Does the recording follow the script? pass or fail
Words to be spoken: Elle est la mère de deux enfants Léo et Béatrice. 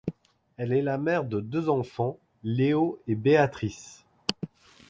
pass